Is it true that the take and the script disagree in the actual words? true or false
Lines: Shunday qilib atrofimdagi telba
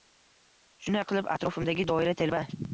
true